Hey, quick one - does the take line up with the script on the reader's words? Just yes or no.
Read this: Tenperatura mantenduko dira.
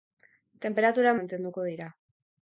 yes